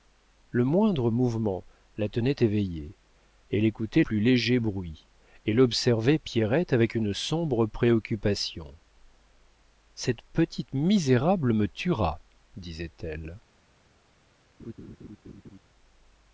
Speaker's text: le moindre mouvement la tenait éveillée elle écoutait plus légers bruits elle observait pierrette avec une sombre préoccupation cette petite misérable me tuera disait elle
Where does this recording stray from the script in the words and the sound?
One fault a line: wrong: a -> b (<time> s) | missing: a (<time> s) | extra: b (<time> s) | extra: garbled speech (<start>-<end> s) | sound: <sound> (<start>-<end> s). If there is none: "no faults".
sound: laugh (14.6-15.6 s)